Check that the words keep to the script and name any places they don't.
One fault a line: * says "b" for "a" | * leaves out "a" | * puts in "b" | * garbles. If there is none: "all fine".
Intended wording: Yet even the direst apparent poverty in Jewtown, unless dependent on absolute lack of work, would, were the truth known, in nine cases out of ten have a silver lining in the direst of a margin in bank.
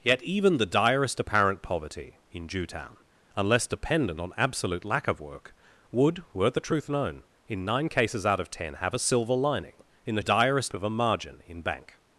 all fine